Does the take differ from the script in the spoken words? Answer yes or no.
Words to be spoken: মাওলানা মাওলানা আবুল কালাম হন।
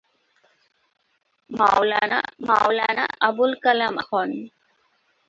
no